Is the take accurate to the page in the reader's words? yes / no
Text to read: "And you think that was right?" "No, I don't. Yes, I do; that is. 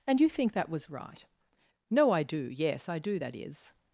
no